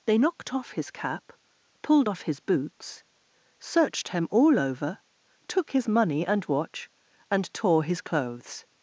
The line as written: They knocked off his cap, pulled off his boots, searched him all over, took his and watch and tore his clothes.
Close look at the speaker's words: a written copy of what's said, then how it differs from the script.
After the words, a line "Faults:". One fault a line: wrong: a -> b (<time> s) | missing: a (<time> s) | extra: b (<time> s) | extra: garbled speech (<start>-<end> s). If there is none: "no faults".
They knocked off his cap, pulled off his boots, searched him all over, took his money and watch and tore his clothes.
Faults:
extra: money (5.9 s)